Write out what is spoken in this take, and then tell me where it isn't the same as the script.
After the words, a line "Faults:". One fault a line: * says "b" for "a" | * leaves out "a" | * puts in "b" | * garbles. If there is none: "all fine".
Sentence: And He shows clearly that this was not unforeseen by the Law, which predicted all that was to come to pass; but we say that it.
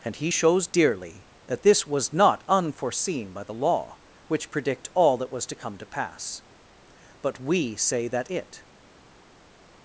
And He shows dearly that this was not unforeseen by the Law, which predict all that was to come to pass; but we say that it.
Faults:
* says "dearly" for "clearly"
* says "predict" for "predicted"